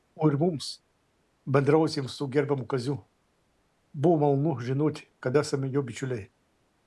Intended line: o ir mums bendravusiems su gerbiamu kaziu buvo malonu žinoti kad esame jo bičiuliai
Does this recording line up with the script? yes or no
yes